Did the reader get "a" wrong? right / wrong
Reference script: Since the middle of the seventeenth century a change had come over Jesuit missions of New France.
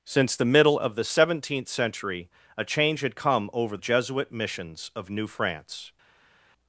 right